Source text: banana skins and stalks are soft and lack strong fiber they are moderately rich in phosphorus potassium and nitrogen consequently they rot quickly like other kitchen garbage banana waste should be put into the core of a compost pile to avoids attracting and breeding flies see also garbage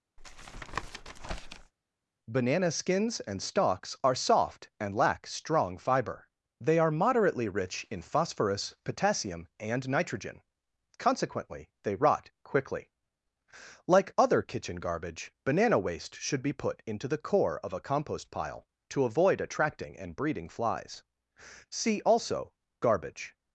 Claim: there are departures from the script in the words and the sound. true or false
true